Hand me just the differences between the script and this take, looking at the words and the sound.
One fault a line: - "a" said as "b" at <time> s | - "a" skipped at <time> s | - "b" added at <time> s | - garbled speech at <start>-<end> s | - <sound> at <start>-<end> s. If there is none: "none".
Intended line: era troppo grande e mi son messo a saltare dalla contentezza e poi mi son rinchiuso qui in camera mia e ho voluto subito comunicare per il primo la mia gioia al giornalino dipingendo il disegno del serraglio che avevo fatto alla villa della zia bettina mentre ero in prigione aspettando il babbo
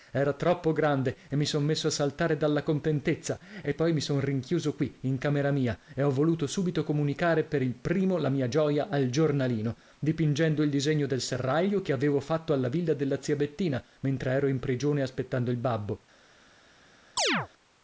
- chirp at 17.2-17.5 s